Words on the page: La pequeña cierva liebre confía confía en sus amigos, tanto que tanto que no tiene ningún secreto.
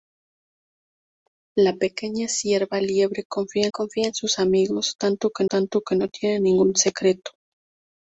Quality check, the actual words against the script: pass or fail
pass